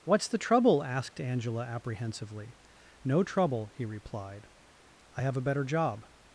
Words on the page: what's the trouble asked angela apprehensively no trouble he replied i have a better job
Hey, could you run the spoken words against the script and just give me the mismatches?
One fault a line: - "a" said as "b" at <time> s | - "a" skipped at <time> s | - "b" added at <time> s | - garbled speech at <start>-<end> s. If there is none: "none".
none